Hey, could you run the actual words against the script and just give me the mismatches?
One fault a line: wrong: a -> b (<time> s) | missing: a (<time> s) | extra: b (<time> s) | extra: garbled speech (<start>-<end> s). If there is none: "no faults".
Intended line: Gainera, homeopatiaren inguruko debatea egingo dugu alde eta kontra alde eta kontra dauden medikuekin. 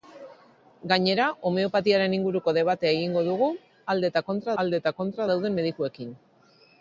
no faults